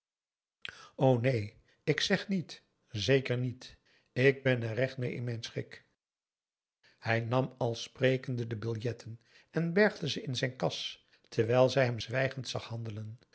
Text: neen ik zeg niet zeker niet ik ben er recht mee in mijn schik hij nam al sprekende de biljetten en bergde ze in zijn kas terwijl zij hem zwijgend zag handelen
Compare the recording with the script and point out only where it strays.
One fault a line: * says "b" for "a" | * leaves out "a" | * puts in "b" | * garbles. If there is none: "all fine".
all fine